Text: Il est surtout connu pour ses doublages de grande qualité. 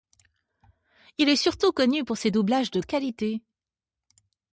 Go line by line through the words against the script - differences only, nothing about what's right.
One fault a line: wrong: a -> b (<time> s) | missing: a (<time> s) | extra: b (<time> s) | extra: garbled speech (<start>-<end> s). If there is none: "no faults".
missing: grande (2.8 s)